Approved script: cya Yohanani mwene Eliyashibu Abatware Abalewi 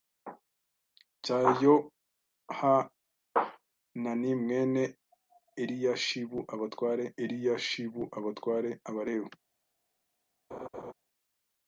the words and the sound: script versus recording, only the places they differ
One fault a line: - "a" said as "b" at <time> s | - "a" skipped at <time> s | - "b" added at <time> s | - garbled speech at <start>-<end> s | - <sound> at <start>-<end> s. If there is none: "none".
- "Eliyashibu Abatware" added at 7.2 s
- laugh at 10.5-10.9 s